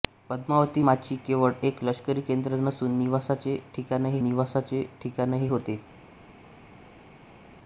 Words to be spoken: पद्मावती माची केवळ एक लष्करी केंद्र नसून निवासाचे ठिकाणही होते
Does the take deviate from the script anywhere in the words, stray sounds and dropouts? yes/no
yes